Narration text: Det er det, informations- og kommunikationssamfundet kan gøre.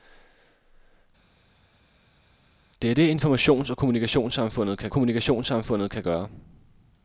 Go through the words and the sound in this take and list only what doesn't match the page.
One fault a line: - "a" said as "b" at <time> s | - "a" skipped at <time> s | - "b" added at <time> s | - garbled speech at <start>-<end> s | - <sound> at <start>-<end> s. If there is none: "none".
- "kommunikationssamfundet kan" added at 4.9 s